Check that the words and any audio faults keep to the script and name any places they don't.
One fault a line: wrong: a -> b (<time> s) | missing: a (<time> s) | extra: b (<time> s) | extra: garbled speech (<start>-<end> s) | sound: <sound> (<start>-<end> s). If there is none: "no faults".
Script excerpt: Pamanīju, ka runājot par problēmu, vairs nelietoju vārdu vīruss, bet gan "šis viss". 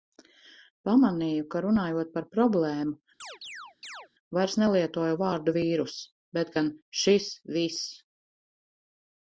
sound: chirp (3.2-4.1 s)